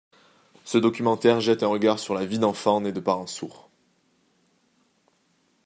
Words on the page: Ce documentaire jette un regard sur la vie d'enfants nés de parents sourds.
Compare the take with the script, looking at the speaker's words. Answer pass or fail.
pass